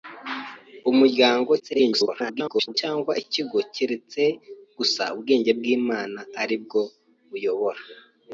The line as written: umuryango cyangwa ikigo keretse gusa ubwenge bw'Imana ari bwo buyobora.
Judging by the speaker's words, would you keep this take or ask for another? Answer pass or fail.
fail